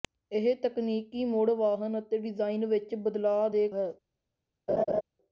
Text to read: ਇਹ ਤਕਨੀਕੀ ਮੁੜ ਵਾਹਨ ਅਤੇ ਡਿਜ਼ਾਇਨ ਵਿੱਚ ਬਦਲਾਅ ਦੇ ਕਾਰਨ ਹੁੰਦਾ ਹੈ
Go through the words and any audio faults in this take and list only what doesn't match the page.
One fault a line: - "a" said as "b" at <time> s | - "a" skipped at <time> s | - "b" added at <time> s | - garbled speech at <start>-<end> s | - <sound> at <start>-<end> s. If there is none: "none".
- "ਕਾਰਨ ਹੁੰਦਾ" skipped at 3.7 s
- laugh at 4.7-5.0 s